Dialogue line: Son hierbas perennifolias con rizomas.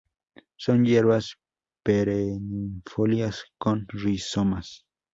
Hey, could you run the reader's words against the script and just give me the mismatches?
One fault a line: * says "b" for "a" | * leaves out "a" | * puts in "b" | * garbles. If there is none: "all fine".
all fine